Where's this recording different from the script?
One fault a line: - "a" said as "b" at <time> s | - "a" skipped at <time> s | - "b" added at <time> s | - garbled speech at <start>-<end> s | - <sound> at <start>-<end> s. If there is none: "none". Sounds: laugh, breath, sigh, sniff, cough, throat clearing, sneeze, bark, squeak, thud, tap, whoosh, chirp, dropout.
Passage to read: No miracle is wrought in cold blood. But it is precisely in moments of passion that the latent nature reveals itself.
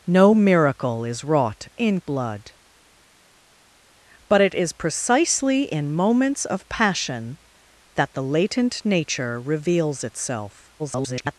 - "cold" skipped at 2.0 s
- garbled speech at 10.8-11.4 s